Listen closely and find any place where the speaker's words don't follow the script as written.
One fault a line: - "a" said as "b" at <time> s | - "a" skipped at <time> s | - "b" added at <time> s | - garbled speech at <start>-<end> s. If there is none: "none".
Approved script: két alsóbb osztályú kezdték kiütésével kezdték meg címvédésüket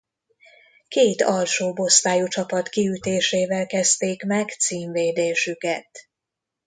- "kezdték" said as "csapat" at 2.3 s